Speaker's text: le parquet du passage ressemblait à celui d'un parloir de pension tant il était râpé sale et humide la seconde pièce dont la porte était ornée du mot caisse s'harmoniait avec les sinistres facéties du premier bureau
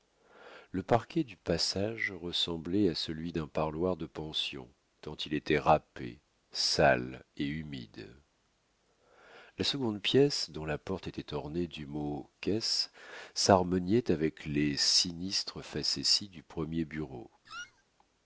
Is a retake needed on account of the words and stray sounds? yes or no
yes